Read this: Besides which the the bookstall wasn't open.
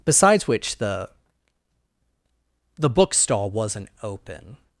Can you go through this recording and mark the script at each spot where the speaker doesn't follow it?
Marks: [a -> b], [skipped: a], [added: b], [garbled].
Besides which the the bookstall wasn't open.